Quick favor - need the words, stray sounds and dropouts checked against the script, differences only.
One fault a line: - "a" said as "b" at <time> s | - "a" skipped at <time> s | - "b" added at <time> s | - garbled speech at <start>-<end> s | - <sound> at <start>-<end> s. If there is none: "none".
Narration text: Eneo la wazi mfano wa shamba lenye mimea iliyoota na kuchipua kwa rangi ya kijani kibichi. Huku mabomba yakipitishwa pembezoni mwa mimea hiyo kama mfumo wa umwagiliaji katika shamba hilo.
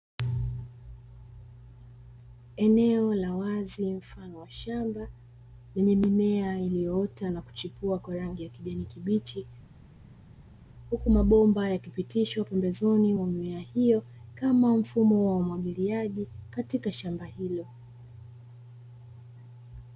none